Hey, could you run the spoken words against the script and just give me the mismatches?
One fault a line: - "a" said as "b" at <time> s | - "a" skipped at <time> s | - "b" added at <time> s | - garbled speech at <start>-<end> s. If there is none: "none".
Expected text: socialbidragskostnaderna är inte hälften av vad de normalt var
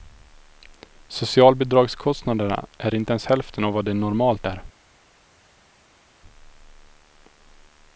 - "ens" added at 3.1 s
- "var" said as "är" at 4.4 s